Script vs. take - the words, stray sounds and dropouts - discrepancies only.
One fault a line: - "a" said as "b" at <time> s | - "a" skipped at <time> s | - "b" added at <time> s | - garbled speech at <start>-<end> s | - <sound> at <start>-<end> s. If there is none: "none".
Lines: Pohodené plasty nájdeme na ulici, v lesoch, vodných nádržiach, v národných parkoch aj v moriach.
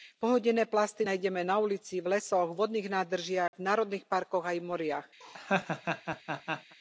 - dropout at 3.5-3.5 s
- laugh at 5.2-6.8 s